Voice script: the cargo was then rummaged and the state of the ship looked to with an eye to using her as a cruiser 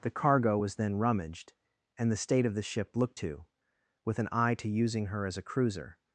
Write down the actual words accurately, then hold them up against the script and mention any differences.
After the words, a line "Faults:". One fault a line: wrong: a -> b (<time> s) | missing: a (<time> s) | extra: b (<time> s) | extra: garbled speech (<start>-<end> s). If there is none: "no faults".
the cargo was then rummaged and the state of the ship looked to with an eye to using her as a cruiser
Faults:
no faults